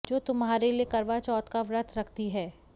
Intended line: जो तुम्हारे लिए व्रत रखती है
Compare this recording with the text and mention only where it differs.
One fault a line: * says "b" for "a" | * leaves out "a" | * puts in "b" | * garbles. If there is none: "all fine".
* puts in "करवा चौथ का"